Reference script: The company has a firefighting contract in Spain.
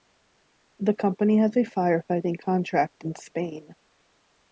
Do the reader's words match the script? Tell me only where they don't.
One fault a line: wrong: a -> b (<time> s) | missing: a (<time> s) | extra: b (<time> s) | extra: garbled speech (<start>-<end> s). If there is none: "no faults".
no faults